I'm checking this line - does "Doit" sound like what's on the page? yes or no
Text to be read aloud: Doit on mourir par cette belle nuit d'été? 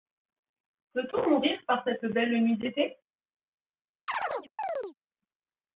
no